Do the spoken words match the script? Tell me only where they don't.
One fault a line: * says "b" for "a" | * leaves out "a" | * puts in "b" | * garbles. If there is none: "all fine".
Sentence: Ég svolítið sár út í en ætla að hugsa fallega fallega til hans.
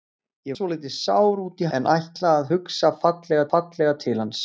all fine